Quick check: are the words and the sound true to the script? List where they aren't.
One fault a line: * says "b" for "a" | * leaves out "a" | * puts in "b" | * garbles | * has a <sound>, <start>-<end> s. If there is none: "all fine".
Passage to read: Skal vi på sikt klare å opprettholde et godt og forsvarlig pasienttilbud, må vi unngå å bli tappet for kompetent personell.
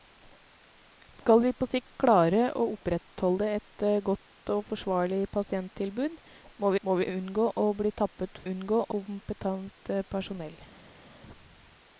* puts in "må"
* says "unngå" for "for"